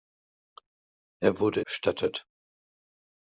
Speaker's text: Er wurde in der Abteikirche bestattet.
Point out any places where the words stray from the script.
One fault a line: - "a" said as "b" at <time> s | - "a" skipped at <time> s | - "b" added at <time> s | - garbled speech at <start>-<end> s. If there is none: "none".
- "in der Abteikirche" skipped at 1.6 s